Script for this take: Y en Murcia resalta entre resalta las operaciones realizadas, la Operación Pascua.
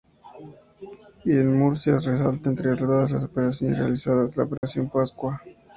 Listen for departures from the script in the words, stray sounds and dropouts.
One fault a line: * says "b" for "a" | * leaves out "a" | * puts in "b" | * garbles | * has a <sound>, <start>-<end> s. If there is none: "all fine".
* says "todas" for "resalta"
* has a dropout, 4.6-4.6 s